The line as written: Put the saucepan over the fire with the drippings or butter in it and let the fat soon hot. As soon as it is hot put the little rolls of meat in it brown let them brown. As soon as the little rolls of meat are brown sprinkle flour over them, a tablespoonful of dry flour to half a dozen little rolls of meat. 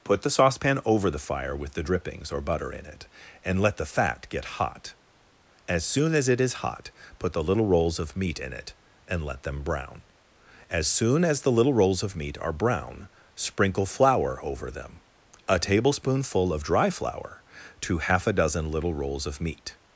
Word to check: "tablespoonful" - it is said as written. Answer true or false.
true